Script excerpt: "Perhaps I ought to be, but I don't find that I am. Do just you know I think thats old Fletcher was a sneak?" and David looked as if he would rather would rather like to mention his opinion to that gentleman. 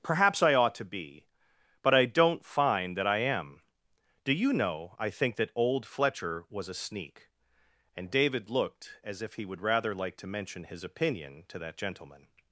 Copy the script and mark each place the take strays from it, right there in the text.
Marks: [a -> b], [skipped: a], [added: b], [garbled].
"Perhaps I ought to be, but I don't find that I am. Do [skipped: just] you know I think [thats -> that] old Fletcher was a sneak?" and David looked as if he would rather [skipped: would rather] like to mention his opinion to that gentleman.